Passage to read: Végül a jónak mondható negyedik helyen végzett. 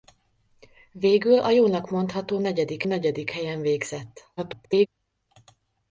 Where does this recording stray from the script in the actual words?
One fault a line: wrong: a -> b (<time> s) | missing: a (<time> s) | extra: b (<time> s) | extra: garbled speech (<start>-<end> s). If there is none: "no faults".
extra: negyedik (2.8 s)
extra: garbled speech (4.4-4.9 s)